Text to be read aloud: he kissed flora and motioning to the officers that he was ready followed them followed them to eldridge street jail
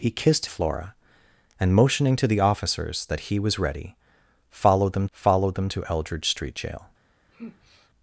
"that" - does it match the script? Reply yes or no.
yes